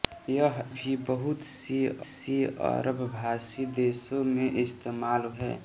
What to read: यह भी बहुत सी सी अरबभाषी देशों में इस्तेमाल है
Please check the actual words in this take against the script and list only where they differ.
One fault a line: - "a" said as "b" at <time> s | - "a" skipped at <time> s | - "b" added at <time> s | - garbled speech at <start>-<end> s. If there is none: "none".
none